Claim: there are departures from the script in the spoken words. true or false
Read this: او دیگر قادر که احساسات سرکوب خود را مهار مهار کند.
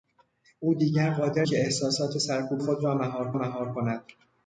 false